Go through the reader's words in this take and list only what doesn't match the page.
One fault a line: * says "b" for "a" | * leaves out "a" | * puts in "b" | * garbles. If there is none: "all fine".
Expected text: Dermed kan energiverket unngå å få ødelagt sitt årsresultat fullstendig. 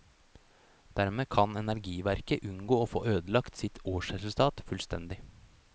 all fine